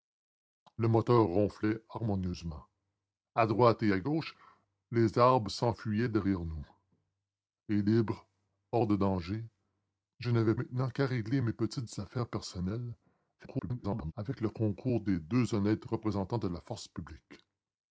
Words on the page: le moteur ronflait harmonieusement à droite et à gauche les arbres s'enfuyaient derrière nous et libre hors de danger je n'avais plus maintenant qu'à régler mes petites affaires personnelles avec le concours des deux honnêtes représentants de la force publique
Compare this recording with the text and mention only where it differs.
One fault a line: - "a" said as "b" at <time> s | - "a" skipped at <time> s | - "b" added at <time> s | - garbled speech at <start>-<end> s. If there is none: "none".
- "plus" skipped at 10.6 s
- garbled speech at 13.4-14.1 s